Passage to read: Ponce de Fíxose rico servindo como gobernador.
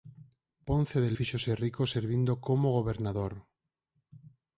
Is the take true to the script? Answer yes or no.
yes